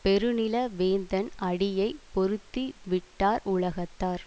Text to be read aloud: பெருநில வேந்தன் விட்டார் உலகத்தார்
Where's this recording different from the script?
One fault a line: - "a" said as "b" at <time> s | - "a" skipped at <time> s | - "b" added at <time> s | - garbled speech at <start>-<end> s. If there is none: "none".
- "அடியை பொருத்தி" added at 1.4 s